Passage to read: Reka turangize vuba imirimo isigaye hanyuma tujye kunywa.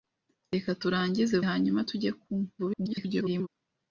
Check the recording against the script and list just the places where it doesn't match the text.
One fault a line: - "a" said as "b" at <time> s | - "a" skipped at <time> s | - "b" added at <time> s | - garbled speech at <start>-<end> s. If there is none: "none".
- "vuba imirimo isigaye" skipped at 1.4 s
- garbled speech at 2.6-3.5 s